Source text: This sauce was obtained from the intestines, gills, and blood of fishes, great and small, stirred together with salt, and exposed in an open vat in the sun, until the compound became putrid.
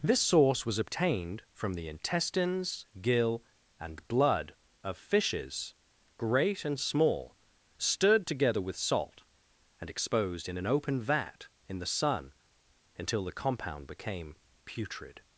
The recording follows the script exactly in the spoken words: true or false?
false